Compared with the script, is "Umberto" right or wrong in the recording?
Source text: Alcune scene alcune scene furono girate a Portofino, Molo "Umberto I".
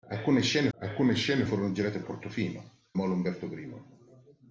right